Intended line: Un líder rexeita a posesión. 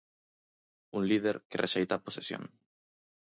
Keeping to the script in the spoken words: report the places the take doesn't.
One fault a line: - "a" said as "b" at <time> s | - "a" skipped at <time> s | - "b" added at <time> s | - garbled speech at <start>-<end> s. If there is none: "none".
- "que" added at 1.5 s